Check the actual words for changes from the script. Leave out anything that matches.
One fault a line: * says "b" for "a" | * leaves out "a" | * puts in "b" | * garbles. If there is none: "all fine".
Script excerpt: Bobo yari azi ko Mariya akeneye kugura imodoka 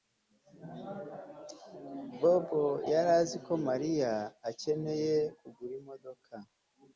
all fine